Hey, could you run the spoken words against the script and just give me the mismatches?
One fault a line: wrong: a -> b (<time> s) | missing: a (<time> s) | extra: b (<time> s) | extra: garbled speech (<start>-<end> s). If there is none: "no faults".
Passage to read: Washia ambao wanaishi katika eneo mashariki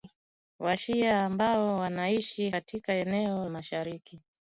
no faults